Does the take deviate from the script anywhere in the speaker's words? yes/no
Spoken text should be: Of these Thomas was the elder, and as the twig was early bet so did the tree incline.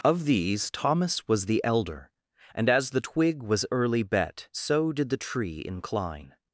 no